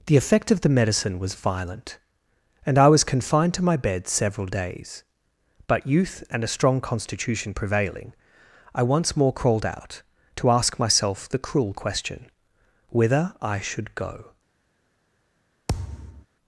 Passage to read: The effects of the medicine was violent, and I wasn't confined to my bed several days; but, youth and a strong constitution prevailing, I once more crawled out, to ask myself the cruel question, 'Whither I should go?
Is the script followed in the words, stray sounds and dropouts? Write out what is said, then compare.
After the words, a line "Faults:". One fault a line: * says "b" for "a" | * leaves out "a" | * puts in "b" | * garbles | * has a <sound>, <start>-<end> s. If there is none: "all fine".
The effect of the medicine was violent, and I was confined to my bed several days; but, youth and a strong constitution prevailing, I once more crawled out, to ask myself the cruel question, 'Whither I should go?
Faults:
* says "effect" for "effects"
* says "was" for "wasn't"
* has a thud, 15.7-16.3 s